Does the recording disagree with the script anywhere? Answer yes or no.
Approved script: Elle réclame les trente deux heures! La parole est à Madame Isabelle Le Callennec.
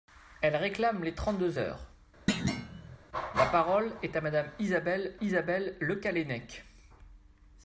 yes